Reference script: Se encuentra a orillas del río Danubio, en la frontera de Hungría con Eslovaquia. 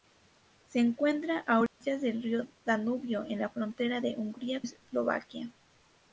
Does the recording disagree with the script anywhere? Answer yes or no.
yes